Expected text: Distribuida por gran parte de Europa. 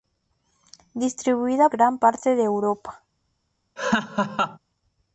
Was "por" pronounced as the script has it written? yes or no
no